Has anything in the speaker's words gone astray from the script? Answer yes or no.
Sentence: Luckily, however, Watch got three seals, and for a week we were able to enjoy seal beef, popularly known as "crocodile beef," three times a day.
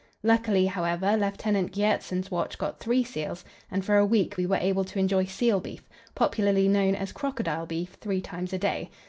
yes